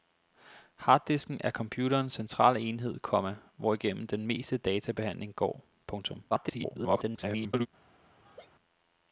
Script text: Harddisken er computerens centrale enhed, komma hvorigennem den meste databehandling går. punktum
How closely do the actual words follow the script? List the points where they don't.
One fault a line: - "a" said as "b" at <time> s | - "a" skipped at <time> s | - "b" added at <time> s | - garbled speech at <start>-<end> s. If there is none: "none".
- garbled speech at 6.3-7.7 s